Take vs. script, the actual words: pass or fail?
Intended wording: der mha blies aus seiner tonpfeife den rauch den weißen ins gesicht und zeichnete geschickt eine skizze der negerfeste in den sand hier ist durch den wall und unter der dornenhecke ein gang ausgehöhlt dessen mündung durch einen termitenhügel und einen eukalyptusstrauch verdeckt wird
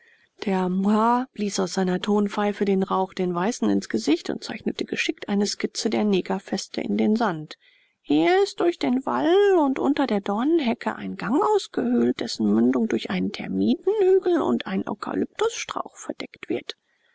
pass